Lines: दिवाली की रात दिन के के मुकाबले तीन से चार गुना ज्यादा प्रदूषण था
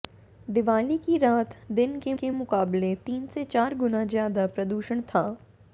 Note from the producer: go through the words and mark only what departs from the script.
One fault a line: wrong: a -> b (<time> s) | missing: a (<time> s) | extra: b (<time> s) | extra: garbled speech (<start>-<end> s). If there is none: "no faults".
no faults